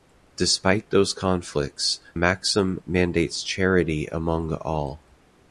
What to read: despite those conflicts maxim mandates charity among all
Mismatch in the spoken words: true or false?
false